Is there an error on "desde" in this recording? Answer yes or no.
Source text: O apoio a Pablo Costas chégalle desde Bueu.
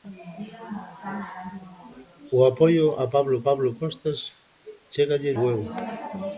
yes